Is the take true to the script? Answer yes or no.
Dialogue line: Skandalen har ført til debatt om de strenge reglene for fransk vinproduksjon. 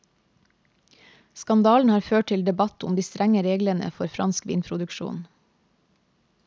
yes